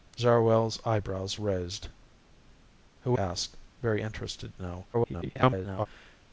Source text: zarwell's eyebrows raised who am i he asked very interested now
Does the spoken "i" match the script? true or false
false